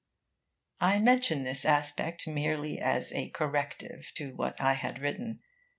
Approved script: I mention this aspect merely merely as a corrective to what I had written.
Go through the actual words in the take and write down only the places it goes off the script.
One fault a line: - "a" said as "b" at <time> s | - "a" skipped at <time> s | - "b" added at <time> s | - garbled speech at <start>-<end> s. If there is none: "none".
- "merely" skipped at 2.8 s